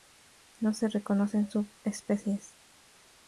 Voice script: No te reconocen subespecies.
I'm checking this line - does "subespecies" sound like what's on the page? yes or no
yes